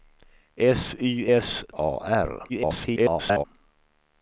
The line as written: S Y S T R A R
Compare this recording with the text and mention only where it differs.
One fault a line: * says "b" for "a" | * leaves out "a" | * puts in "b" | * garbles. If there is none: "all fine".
* leaves out "T R"
* garbles